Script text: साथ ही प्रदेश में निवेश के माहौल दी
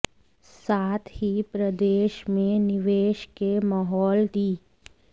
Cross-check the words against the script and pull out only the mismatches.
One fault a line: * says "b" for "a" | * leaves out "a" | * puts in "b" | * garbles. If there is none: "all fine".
all fine